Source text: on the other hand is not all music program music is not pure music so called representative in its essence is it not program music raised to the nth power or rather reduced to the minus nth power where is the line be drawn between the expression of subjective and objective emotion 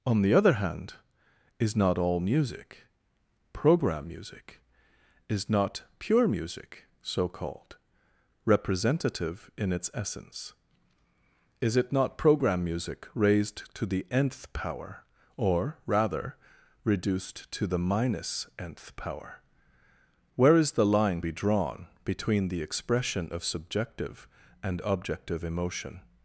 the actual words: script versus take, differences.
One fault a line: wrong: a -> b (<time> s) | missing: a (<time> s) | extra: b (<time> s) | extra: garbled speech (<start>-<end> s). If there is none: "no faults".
no faults